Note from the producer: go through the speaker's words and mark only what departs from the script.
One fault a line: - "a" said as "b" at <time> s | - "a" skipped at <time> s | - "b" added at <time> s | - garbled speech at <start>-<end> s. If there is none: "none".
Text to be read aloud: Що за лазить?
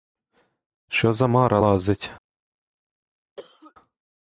- "мара" added at 1.3 s